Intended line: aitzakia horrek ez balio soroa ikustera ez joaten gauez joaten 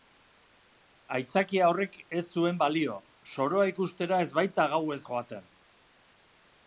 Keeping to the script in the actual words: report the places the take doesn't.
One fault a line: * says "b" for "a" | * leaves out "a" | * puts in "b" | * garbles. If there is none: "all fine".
* puts in "zuen"
* says "baita" for "joaten"